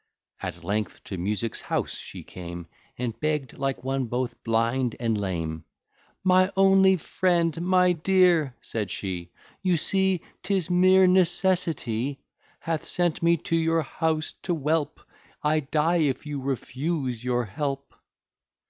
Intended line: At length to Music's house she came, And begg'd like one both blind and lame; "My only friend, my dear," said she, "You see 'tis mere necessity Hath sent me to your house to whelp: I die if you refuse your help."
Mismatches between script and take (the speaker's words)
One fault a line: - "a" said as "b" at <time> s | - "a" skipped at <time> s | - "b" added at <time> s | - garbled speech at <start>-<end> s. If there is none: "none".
none